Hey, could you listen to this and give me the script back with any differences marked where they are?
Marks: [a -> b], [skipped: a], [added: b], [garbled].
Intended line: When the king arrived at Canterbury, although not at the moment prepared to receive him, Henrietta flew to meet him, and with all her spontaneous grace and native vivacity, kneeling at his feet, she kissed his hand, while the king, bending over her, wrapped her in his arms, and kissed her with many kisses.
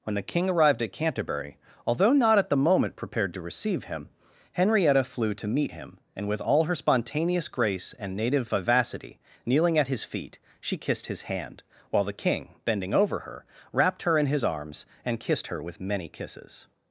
When the king arrived at Canterbury, although not at the moment prepared to receive him, Henrietta flew to meet him, and with all her spontaneous grace and native vivacity, kneeling at his feet, she kissed his hand, while the king, bending over her, wrapped her in his arms, and kissed her with many kisses.